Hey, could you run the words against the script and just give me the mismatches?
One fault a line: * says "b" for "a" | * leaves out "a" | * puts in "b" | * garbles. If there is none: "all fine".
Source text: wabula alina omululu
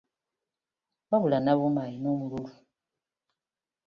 * puts in "nabuuma"